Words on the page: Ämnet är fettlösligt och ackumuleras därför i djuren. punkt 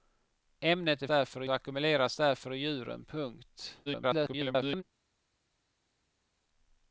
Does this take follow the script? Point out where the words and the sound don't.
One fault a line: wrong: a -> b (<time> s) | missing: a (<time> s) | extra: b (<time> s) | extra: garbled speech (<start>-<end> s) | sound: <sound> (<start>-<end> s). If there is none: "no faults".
wrong: fettlösligt -> därför (1.1 s)
extra: garbled speech (3.9-4.8 s)